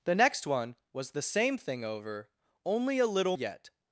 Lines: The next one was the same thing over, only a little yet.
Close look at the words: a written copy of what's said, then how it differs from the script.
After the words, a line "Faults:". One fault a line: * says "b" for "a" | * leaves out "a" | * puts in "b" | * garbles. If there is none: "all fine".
The next one was the same thing over, only a little yet.
Faults:
all fine